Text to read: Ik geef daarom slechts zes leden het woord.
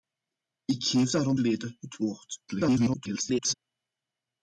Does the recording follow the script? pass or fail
fail